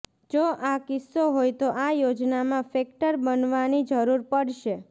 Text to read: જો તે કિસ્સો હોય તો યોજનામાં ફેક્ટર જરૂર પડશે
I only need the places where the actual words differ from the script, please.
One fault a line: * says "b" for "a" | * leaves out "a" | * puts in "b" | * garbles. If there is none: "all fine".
* says "આ" for "તે"
* puts in "આ"
* puts in "બનવાની"